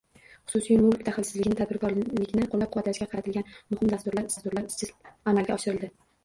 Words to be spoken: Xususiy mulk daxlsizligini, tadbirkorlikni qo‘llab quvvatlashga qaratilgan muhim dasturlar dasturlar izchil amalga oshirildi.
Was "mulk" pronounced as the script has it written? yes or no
yes